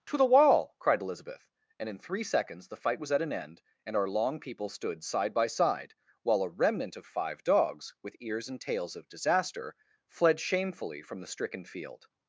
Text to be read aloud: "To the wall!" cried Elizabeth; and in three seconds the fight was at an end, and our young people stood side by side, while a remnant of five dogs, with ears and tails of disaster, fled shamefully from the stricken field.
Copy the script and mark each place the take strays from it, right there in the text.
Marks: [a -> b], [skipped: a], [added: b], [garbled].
"To the wall!" cried Elizabeth; and in three seconds the fight was at an end, and our [young -> long] people stood side by side, while a remnant of five dogs, with ears and tails of disaster, fled shamefully from the stricken field.